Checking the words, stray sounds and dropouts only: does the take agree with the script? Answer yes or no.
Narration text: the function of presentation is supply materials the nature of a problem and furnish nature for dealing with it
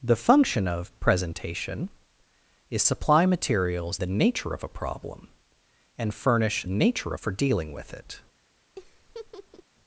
no